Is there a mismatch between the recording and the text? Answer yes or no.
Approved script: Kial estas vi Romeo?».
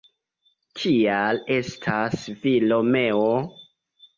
no